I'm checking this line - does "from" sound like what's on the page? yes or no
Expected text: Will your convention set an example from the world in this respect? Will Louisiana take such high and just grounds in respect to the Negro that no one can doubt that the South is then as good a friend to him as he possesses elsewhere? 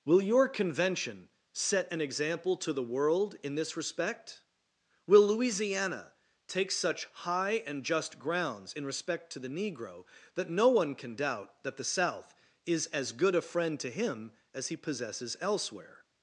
no